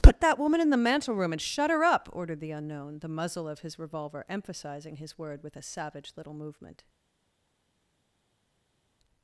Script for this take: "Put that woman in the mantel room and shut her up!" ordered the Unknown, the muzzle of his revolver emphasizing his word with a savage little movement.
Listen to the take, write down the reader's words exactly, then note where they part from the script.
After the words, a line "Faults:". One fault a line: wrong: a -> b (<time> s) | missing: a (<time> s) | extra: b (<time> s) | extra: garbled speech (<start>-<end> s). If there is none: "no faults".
"Put that woman in the mantel room and shut her up!" ordered the Unknown, the muzzle of his revolver emphasizing his word with a savage little movement.
Faults:
no faults